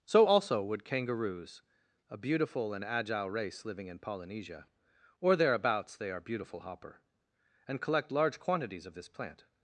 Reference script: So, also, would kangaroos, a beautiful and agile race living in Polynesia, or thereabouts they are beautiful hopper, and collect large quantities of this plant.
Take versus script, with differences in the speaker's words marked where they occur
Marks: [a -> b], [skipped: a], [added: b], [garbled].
So, also, would kangaroos, a beautiful and agile race living in Polynesia, or thereabouts they are beautiful hopper, and collect large quantities of this plant.